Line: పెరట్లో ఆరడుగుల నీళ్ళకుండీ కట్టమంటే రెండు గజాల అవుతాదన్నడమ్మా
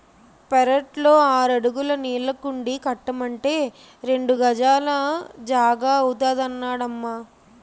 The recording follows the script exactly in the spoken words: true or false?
false